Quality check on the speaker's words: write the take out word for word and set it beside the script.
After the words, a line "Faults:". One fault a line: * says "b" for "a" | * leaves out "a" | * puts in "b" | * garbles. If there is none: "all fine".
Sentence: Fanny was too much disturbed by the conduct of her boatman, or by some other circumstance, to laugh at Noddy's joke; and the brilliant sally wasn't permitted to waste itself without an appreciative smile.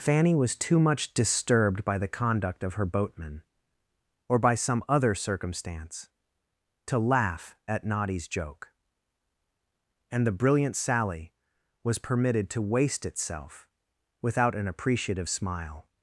Fanny was too much disturbed by the conduct of her boatman, or by some other circumstance, to laugh at Noddy's joke; and the brilliant sally was permitted to waste itself without an appreciative smile.
Faults:
* says "was" for "wasn't"